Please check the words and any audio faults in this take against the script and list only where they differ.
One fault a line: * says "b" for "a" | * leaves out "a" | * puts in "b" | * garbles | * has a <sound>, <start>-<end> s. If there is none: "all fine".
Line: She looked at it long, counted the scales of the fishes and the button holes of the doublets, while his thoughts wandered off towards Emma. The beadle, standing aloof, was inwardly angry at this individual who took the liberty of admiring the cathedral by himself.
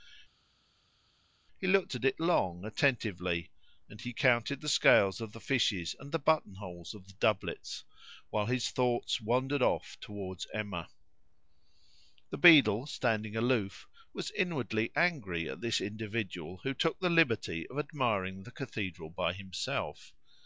* says "He" for "She"
* puts in "attentively and he"